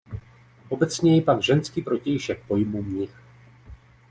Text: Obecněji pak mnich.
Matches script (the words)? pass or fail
fail